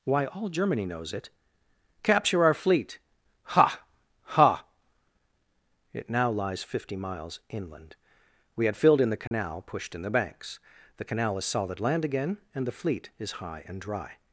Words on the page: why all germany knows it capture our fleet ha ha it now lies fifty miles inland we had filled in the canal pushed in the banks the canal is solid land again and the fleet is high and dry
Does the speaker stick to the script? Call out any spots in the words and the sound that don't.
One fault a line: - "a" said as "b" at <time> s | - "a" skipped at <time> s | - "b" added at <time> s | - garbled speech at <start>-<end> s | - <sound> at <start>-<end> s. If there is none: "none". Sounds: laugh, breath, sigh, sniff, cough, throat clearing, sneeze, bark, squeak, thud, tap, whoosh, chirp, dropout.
- dropout at 9.3-9.3 s